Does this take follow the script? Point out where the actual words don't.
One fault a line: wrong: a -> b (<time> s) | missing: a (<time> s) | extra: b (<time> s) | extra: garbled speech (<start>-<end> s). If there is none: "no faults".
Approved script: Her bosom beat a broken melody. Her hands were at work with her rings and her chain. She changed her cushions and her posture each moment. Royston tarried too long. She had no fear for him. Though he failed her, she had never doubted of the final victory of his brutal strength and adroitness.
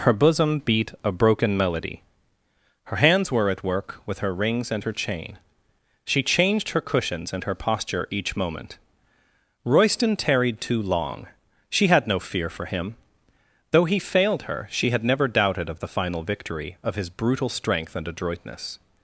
no faults